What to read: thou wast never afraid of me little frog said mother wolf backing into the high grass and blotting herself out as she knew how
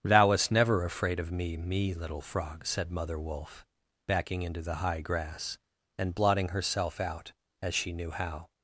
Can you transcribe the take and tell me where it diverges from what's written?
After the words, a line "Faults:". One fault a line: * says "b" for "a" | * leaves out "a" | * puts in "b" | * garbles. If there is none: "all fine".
thou wast never afraid of me me little frog said mother wolf backing into the high grass and blotting herself out as she knew how
Faults:
* puts in "me"